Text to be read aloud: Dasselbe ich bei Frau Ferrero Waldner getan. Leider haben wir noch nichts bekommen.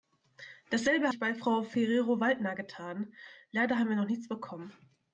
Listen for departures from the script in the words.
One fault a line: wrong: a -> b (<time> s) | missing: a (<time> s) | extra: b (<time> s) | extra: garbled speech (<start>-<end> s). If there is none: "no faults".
no faults